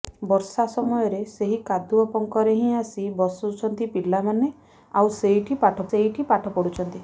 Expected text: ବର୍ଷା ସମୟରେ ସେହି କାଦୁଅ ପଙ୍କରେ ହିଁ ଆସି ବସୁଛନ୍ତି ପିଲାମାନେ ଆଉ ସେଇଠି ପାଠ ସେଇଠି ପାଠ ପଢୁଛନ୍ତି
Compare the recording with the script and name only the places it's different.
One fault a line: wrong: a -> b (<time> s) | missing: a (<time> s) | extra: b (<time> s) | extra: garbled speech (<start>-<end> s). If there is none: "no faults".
no faults